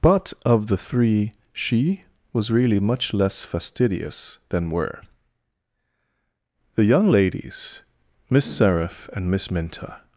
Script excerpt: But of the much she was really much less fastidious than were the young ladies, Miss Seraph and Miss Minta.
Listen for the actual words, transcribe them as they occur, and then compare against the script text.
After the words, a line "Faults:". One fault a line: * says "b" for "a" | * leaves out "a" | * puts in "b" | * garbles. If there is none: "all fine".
But of the three she was really much less fastidious than were the young ladies, Miss Seraph and Miss Minta.
Faults:
* says "three" for "much"